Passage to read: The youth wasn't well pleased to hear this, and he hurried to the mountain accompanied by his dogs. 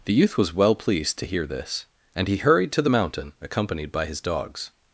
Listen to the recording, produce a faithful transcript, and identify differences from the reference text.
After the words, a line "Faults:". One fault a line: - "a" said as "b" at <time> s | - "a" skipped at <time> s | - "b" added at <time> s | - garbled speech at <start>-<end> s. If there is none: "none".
The youth was well pleased to hear this, and he hurried to the mountain accompanied by his dogs.
Faults:
- "wasn't" said as "was" at 0.4 s